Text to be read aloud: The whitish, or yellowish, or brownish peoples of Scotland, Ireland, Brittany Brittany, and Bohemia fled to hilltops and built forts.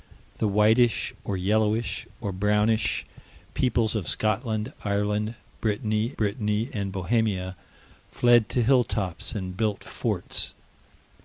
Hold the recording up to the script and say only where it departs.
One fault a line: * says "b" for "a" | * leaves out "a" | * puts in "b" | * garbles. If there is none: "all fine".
all fine